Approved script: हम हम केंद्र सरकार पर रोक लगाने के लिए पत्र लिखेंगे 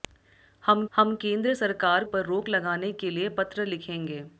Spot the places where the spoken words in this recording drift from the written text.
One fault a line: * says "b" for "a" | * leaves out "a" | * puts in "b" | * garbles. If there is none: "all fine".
all fine